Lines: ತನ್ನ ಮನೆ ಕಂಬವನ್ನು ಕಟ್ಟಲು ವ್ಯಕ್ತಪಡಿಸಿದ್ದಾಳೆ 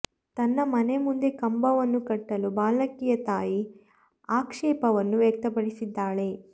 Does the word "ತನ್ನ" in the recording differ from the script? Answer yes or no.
no